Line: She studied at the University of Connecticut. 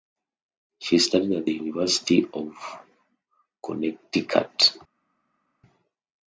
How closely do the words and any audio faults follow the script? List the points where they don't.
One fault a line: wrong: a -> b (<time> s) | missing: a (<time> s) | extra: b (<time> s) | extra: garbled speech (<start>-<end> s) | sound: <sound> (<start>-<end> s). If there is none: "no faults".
no faults